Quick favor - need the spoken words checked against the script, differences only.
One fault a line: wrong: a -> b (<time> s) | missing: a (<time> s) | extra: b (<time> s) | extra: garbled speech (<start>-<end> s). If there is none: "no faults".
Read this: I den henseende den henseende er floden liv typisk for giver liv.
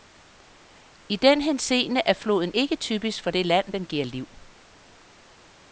missing: den henseende (2.0 s)
wrong: liv -> ikke (2.5 s)
extra: det land den (3.3 s)